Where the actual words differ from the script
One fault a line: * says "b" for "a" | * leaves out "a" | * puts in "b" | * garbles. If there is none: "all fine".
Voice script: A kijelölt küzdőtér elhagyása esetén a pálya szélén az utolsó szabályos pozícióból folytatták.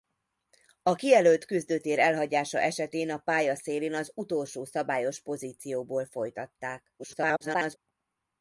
* garbles